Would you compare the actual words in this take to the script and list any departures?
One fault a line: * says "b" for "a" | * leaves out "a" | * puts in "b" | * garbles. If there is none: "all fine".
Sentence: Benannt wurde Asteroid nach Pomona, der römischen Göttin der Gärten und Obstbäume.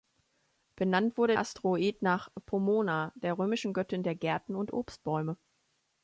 all fine